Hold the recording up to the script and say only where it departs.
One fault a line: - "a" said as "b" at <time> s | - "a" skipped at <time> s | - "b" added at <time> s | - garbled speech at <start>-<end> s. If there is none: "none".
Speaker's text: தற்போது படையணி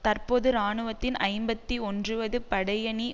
- "இராணுவத்தின் ஐம்பத்தி ஒன்றுவது" added at 0.5 s